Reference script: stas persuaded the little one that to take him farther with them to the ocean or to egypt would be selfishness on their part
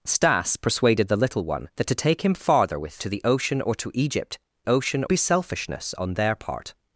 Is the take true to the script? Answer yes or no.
no